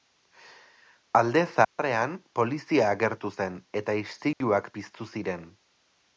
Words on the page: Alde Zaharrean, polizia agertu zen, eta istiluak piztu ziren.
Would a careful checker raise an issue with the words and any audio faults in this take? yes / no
yes